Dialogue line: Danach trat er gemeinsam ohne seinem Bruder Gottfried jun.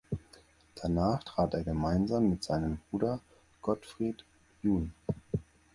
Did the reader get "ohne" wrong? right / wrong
wrong